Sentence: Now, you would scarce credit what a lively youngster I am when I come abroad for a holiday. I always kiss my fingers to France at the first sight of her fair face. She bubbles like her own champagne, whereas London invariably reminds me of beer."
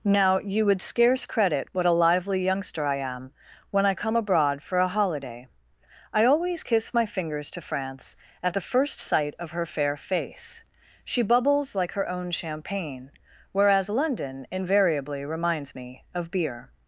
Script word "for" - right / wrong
right